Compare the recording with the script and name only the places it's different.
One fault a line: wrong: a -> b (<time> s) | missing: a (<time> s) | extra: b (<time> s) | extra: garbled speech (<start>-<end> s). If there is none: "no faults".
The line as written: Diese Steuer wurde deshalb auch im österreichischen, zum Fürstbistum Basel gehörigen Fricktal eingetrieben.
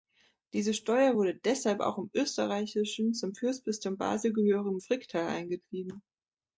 no faults